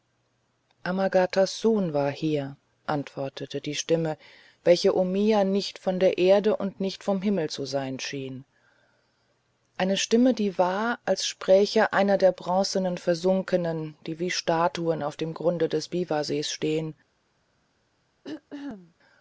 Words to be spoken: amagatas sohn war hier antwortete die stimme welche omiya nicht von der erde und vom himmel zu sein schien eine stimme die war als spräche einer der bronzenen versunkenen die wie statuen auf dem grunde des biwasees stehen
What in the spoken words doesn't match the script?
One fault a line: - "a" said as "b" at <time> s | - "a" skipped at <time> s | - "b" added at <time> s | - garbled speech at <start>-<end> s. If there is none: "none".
- "nicht" added at 6.8 s